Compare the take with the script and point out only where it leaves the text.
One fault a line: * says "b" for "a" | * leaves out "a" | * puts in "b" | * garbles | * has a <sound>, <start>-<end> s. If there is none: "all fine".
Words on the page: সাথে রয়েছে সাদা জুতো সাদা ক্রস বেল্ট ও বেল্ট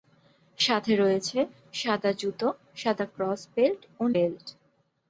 all fine